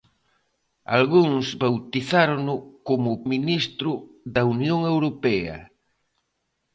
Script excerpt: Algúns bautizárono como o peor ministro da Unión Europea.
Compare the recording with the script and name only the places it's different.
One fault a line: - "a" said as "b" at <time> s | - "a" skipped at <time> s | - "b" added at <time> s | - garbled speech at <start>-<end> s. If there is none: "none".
- "peor" skipped at 3.2 s